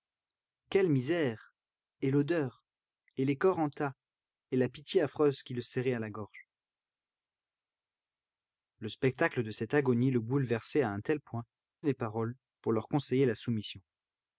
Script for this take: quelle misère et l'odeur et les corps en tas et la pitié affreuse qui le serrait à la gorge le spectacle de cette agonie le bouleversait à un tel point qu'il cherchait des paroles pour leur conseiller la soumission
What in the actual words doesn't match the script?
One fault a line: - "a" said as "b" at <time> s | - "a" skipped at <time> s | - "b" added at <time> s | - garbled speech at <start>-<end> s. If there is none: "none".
- "qu'il cherchait" skipped at 11.4 s